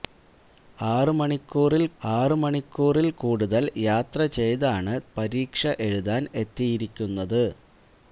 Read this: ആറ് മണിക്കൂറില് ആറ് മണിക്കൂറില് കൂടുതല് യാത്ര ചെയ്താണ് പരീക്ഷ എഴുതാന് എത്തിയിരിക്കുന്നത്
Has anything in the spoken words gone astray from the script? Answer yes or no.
no